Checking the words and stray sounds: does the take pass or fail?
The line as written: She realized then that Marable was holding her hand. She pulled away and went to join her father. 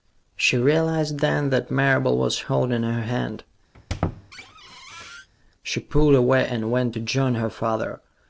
fail